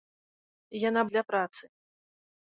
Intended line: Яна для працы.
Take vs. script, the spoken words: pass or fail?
pass